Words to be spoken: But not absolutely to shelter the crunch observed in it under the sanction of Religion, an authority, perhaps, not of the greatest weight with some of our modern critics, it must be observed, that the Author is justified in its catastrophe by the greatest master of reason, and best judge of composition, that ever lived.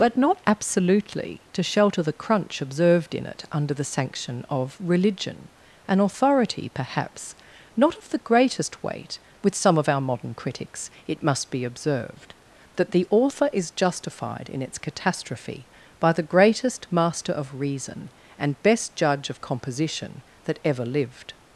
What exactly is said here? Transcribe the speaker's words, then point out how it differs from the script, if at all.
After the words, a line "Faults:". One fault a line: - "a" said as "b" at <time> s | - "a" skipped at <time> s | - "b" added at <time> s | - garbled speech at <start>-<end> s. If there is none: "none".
But not absolutely to shelter the crunch observed in it under the sanction of Religion, an authority, perhaps, not of the greatest weight with some of our modern critics, it must be observed, that the Author is justified in its catastrophe by the greatest master of reason, and best judge of composition, that ever lived.
Faults:
none